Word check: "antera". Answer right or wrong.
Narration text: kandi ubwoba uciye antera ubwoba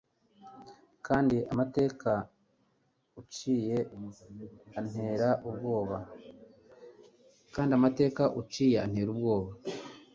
right